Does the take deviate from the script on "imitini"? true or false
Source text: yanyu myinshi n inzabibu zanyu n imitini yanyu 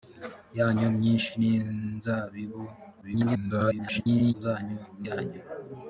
true